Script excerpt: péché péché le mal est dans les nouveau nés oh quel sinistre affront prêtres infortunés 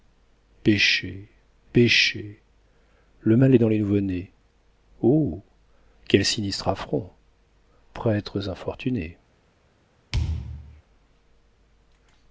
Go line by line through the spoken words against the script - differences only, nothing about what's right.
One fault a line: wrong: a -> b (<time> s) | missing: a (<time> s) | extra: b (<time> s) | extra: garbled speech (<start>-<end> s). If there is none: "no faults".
no faults